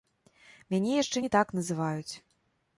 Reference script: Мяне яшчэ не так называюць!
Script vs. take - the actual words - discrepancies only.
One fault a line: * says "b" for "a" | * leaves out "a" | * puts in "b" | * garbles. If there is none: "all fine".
all fine